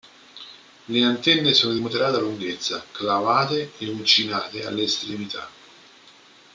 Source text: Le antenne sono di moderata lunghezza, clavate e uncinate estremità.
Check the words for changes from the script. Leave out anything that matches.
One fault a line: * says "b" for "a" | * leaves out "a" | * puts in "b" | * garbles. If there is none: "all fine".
* puts in "alle"